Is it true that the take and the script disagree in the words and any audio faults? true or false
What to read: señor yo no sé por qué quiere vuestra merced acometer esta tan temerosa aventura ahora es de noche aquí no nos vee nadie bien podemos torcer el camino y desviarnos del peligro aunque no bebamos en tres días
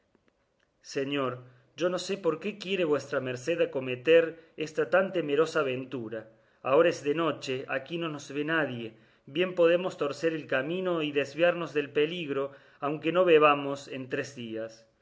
false